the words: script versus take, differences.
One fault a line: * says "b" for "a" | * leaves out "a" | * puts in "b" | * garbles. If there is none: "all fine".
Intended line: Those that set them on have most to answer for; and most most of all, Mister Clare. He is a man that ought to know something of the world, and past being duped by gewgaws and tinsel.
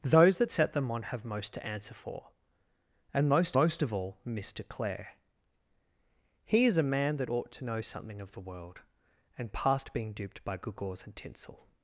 all fine